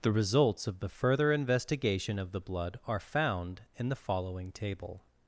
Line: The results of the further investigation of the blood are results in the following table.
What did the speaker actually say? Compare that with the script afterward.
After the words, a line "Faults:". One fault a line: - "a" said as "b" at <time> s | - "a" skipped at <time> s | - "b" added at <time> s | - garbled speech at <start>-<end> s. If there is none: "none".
The results of the further investigation of the blood are found in the following table.
Faults:
- "results" said as "found" at 3.0 s